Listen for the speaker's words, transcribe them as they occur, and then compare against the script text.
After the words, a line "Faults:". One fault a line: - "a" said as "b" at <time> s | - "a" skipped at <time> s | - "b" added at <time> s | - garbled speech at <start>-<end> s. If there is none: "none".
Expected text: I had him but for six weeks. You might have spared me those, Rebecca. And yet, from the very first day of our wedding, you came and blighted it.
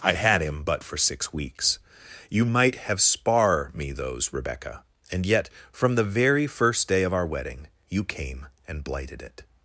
I had him but for six weeks. You might have spar me those, Rebecca. And yet, from the very first day of our wedding, you came and blighted it.
Faults:
- "spared" said as "spar" at 3.0 s